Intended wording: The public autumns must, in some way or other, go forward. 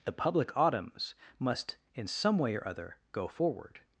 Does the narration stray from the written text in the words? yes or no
no